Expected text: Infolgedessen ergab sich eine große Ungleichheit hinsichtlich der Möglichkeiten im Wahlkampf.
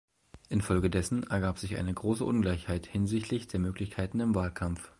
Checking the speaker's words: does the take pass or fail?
pass